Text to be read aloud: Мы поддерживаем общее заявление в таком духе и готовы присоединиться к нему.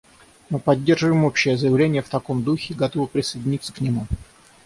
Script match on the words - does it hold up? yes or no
yes